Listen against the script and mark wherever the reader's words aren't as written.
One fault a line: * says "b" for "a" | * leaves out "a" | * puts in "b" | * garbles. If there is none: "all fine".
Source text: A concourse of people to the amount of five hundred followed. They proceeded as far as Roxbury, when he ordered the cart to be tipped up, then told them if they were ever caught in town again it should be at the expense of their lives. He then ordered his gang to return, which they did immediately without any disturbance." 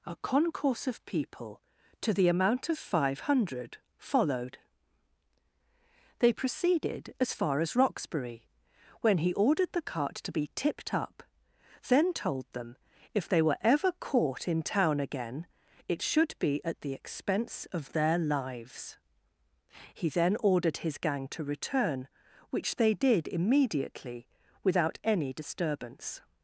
all fine